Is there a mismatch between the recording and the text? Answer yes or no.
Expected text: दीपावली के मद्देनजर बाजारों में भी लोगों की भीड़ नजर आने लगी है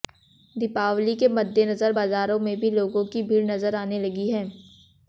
no